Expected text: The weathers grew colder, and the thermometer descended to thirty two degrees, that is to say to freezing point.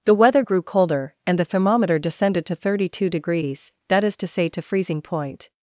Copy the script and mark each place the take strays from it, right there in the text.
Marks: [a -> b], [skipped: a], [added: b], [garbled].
The [weathers -> weather] grew colder, and the thermometer descended to thirty two degrees, that is to say to freezing point.